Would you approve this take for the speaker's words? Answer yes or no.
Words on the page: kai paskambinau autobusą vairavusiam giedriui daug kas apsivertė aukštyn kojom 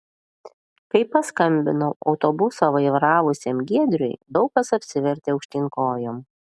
yes